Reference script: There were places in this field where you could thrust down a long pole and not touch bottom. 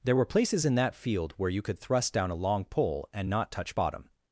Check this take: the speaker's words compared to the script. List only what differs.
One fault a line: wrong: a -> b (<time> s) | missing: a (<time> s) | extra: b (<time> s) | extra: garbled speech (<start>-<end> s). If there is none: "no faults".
wrong: this -> that (0.8 s)